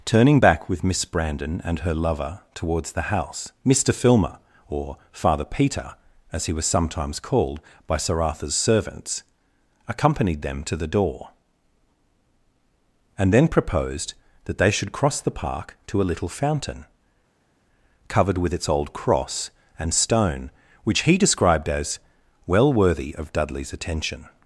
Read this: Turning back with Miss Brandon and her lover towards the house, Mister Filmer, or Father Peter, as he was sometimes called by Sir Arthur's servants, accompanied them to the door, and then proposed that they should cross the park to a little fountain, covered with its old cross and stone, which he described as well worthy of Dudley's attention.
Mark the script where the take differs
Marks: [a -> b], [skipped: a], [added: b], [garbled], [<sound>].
Turning back with Miss Brandon and her lover towards the house, Mister Filmer, or Father Peter, as he was sometimes called by Sir Arthur's servants, accompanied them to the door, and then proposed that they should cross the park to a little fountain, covered with its old cross and stone, which he described as well worthy of Dudley's attention.